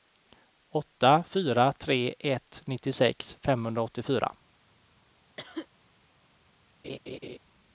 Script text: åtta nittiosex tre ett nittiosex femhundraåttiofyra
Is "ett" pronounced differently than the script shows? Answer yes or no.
no